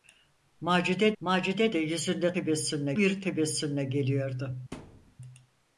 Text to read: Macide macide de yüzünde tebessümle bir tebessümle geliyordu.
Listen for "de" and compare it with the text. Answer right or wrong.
right